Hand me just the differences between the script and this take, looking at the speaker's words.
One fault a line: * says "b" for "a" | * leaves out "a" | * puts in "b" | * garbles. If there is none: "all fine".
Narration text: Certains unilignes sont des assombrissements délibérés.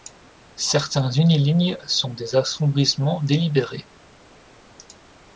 all fine